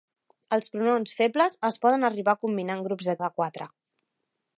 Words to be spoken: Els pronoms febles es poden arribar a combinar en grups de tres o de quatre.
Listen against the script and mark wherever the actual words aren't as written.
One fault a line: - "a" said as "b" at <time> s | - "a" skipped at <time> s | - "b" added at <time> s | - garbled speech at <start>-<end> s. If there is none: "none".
- "tres" skipped at 3.1 s